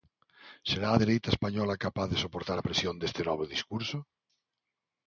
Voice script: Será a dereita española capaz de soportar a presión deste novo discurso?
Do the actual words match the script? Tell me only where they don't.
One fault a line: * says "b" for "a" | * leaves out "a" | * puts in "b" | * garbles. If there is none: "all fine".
all fine